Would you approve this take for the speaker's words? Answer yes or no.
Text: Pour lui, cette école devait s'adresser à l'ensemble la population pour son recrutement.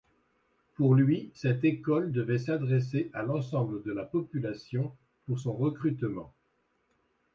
no